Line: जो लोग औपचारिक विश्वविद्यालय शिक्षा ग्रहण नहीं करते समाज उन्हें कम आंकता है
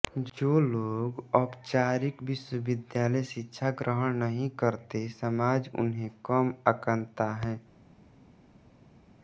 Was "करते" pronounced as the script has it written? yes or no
yes